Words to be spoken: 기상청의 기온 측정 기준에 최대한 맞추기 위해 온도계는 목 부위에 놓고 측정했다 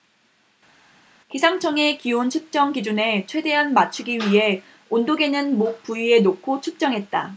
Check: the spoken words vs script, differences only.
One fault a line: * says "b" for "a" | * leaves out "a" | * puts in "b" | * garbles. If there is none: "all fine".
all fine